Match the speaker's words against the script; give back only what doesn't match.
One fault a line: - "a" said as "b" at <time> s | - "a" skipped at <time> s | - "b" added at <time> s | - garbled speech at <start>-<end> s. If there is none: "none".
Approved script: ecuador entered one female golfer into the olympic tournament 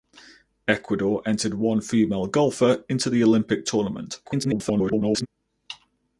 - garbled speech at 4.2-5.3 s